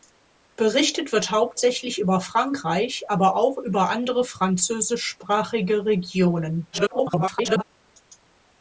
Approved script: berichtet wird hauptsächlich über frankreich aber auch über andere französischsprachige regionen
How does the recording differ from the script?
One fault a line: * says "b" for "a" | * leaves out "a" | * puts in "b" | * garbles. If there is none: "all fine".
* garbles